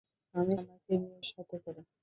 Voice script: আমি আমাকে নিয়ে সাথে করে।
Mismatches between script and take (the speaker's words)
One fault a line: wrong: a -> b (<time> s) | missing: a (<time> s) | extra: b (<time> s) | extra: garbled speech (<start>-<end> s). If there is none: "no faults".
no faults